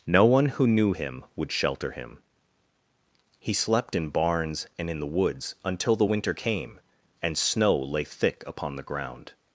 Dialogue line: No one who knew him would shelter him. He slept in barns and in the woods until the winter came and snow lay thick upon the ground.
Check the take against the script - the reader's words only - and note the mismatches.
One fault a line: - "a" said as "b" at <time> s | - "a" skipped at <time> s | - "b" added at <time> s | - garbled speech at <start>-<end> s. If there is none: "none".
none